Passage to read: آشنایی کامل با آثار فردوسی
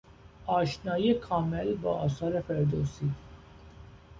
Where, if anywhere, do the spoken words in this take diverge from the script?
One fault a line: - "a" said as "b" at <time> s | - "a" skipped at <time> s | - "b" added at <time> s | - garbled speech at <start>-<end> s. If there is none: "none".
none